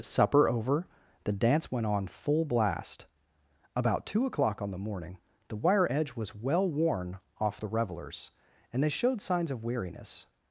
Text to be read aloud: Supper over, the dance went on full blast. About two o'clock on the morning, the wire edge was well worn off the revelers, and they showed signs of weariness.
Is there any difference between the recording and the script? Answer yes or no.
no